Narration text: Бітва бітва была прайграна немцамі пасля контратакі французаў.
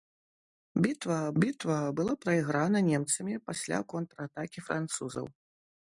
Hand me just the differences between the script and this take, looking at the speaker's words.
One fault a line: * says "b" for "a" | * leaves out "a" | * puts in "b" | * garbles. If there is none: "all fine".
all fine